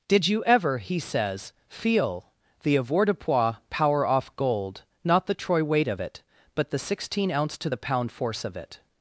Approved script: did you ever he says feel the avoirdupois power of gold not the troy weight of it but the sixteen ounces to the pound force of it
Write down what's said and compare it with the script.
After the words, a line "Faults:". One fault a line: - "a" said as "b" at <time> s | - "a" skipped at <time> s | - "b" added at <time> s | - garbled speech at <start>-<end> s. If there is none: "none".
did you ever he says feel the avoirdupois power off gold not the troy weight of it but the sixteen ounce to the pound force of it
Faults:
- "of" said as "off" at 4.0 s
- "ounces" said as "ounce" at 7.3 s